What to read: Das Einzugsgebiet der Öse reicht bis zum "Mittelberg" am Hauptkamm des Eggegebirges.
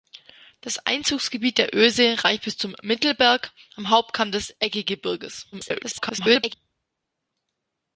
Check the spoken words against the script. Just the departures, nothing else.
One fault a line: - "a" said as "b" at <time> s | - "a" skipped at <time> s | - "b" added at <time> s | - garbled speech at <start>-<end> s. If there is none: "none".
- garbled speech at 5.5-6.5 s